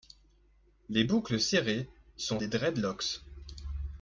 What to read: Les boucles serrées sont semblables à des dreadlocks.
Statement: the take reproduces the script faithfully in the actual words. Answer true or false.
false